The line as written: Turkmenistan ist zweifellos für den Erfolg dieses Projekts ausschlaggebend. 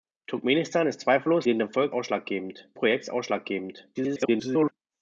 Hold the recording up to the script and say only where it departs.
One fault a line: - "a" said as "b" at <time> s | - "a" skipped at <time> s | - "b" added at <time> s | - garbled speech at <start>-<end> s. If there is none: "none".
- "für" skipped at 1.4 s
- "dieses" said as "ausschlaggebend" at 1.9 s
- garbled speech at 3.9-4.7 s